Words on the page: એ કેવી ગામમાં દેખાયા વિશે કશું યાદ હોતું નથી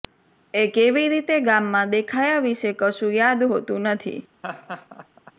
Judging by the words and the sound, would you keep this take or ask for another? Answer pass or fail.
fail